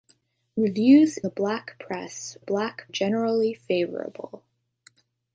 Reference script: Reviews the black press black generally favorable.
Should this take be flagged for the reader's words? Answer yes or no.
no